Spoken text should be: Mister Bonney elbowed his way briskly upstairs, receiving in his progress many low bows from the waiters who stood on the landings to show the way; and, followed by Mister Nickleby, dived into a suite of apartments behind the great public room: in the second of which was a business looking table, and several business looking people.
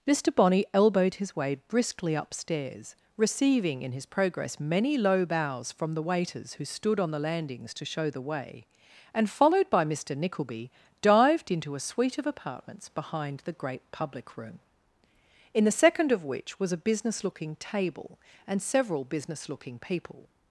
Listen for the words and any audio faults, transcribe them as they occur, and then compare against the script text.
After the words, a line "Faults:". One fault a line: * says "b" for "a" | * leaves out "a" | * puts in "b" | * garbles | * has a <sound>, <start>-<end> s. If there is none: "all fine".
Mister Bonney elbowed his way briskly upstairs, receiving in his progress many low bows from the waiters who stood on the landings to show the way; and, followed by Mister Nickleby, dived into a suite of apartments behind the great public room: in the second of which was a business looking table, and several business looking people.
Faults:
all fine